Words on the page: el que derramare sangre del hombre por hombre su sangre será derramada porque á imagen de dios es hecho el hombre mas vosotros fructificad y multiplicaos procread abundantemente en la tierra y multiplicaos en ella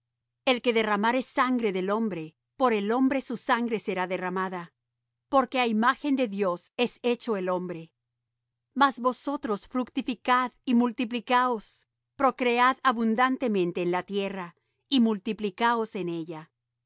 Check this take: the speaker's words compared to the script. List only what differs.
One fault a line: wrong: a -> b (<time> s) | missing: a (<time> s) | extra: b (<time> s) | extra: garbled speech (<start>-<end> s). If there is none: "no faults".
extra: el (2.7 s)